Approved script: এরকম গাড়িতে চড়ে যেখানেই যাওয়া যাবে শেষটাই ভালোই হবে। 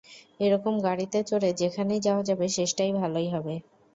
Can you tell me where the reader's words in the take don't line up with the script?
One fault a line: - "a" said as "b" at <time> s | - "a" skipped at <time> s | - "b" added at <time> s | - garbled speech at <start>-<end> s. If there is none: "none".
none